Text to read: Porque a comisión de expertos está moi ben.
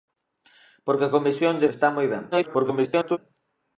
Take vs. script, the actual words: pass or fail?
fail